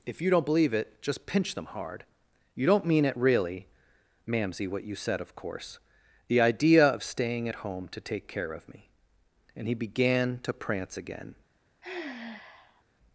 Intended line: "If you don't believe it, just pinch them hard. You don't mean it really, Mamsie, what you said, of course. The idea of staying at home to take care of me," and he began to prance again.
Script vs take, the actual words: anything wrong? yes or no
no